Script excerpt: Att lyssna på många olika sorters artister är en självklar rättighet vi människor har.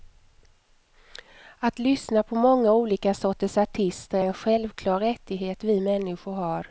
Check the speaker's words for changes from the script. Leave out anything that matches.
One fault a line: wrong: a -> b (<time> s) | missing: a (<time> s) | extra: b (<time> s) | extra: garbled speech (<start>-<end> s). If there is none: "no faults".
no faults